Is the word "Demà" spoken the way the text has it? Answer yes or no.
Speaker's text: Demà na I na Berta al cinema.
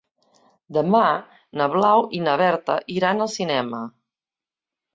yes